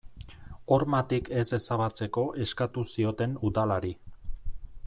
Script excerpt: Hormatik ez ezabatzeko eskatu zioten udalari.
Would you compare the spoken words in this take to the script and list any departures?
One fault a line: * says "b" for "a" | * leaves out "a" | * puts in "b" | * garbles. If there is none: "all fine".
all fine